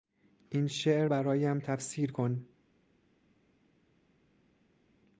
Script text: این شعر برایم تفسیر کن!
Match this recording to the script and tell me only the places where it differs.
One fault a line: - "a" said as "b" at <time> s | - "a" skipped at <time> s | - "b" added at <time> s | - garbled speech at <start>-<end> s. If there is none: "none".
none